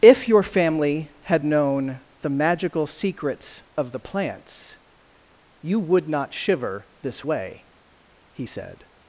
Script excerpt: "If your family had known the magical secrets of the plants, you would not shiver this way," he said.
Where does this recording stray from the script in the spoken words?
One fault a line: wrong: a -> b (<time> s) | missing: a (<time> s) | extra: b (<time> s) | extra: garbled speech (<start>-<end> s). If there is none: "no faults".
no faults